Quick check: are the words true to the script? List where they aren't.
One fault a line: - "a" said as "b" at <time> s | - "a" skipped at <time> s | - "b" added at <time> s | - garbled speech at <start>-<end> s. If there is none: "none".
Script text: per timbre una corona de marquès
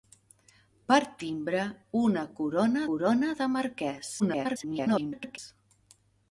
- "corona" added at 2.9 s
- garbled speech at 4.2-5.4 s